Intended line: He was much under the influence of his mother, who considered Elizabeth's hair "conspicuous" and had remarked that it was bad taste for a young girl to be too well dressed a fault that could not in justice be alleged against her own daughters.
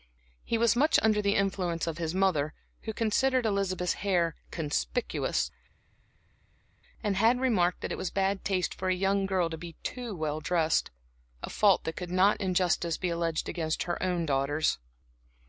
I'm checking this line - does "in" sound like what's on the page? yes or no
yes